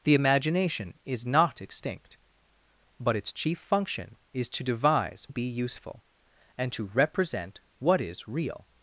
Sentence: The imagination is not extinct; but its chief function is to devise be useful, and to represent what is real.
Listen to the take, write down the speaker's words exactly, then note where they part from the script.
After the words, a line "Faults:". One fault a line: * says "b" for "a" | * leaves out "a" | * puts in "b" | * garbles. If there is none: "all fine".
The imagination is not extinct; but its chief function is to devise be useful, and to represent what is real.
Faults:
all fine